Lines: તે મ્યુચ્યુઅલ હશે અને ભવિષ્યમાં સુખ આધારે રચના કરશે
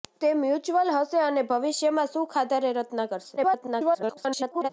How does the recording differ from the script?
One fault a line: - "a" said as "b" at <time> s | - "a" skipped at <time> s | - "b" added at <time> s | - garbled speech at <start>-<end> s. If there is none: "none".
- garbled speech at 3.4-4.7 s